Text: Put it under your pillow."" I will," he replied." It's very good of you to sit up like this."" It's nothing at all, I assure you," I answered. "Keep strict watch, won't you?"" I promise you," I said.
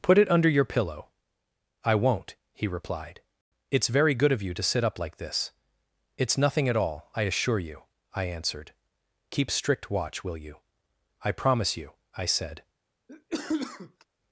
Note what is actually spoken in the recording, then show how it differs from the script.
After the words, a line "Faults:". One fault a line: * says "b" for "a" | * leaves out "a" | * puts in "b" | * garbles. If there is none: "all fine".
Put it under your pillow."" I won't," he replied." It's very good of you to sit up like this."" It's nothing at all, I assure you," I answered. "Keep strict watch, will you?"" I promise you," I said.
Faults:
* says "won't" for "will"
* says "will" for "won't"